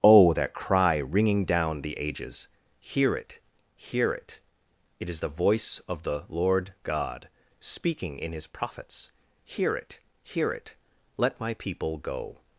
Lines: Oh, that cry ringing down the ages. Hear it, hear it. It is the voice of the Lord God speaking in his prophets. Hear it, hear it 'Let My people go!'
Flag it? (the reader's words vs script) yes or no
no